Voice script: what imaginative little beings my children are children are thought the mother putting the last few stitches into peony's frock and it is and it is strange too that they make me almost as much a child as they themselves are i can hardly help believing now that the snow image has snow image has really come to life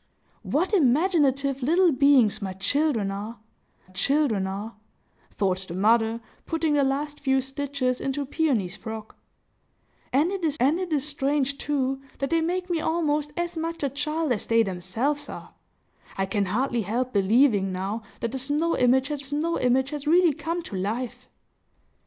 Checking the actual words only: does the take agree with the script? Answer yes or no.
yes